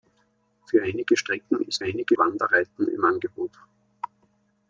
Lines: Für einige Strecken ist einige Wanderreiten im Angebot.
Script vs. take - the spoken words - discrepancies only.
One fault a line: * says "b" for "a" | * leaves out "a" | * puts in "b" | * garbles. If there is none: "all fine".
all fine